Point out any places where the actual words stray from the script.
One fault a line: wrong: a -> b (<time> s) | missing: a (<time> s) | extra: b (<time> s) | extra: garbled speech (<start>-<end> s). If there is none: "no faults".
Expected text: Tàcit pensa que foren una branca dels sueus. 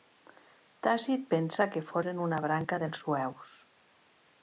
no faults